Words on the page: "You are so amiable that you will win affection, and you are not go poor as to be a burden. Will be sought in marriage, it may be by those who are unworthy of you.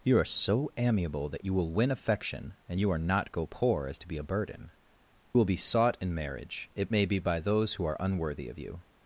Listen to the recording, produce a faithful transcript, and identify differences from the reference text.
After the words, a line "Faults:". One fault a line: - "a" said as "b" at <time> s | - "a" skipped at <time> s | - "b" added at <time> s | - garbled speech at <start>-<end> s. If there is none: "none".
"You are so amiable that you will win affection, and you are not go poor as to be a burden. Will be sought in marriage, it may be by those who are unworthy of you.
Faults:
none